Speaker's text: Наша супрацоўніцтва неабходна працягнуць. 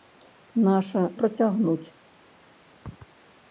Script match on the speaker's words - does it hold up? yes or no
no